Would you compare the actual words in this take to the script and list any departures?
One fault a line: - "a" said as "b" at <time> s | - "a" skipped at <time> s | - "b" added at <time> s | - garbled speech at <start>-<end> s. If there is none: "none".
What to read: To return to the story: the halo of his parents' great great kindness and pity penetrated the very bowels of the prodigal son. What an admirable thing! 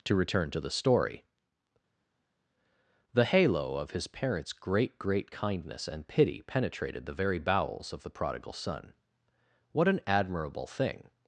none